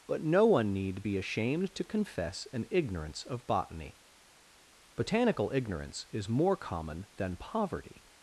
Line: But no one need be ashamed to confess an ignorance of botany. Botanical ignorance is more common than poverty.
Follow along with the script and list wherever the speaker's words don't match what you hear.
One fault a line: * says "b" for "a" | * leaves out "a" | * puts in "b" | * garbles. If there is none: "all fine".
all fine